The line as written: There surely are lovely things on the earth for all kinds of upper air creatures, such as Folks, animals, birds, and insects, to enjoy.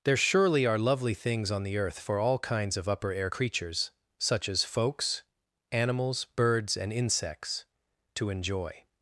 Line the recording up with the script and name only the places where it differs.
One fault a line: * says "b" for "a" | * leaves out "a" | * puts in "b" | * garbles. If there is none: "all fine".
all fine